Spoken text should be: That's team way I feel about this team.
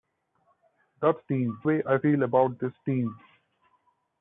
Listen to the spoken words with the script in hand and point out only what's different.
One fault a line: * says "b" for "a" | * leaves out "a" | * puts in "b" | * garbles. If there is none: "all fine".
all fine